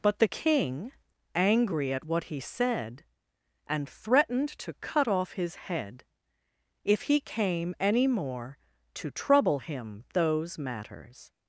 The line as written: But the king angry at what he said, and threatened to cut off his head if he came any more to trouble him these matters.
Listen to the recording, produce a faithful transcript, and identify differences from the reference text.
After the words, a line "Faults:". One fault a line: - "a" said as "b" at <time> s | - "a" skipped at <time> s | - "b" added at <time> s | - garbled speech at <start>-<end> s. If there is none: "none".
But the king angry at what he said, and threatened to cut off his head if he came any more to trouble him those matters.
Faults:
- "these" said as "those" at 10.1 s